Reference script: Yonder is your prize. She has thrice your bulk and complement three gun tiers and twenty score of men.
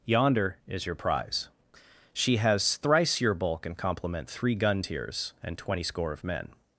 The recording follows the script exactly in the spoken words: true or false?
true